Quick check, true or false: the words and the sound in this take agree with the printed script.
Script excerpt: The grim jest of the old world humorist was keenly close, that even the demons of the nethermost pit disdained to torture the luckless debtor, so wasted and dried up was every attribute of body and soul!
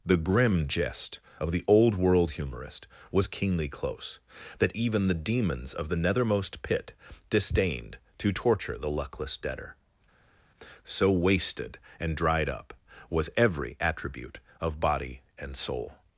true